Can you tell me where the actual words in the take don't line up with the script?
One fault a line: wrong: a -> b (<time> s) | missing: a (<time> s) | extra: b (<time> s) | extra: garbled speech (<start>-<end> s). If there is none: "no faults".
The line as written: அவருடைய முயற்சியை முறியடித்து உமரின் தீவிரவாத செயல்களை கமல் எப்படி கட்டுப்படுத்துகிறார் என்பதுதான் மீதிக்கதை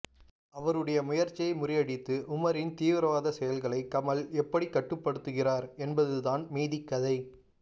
no faults